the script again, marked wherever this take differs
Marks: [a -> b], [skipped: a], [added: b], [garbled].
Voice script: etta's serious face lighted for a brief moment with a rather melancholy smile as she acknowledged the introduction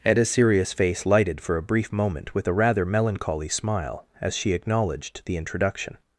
etta's serious face lighted for a brief moment with a rather melancholy smile as she acknowledged the introduction